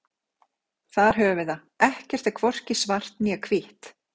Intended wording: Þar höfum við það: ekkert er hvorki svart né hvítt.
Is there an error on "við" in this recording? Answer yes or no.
no